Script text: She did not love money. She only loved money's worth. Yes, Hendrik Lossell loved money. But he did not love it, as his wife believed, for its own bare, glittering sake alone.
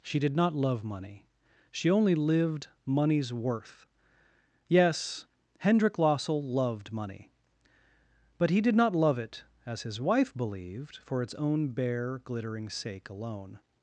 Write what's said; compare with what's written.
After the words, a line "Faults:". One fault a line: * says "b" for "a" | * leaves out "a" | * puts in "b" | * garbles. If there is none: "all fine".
She did not love money. She only lived money's worth. Yes, Hendrik Lossell loved money. But he did not love it, as his wife believed, for its own bare, glittering sake alone.
Faults:
* says "lived" for "loved"